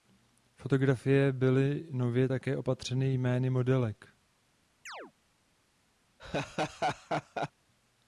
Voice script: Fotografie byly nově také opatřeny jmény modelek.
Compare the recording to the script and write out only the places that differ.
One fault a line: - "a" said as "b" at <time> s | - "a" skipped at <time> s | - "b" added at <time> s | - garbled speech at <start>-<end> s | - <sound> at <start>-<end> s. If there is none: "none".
- chirp at 4.9-5.1 s
- laugh at 6.2-7.5 s